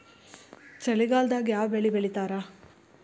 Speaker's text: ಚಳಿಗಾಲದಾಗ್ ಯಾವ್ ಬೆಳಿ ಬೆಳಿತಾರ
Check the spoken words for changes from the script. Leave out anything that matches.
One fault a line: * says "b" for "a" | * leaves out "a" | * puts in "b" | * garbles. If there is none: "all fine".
all fine